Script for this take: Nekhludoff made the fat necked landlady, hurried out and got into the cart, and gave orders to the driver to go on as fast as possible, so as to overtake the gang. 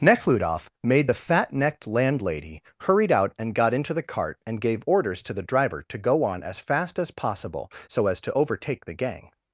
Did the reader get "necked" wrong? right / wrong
right